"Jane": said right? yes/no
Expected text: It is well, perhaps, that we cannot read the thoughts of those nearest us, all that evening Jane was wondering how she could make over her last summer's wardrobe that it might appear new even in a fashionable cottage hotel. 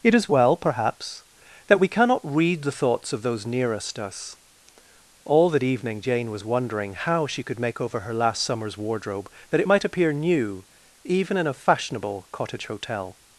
yes